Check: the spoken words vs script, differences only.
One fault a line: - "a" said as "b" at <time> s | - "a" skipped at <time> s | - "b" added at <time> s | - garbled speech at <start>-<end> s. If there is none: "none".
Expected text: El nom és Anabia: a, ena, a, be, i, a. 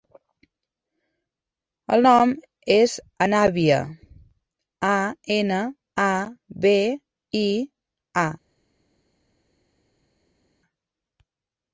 none